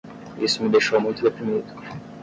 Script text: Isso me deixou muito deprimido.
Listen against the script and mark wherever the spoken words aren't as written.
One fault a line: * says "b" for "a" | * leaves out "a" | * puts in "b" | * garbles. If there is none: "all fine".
all fine